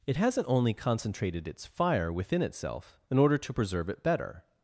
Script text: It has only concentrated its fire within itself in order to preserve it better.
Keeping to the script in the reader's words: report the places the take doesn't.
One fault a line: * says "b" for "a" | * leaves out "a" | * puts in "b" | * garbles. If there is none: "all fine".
* says "hasn't" for "has"